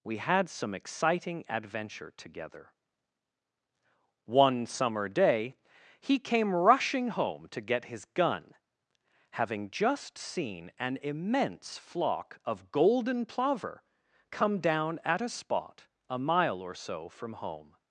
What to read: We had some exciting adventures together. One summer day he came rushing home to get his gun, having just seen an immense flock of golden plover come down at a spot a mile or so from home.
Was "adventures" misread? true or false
true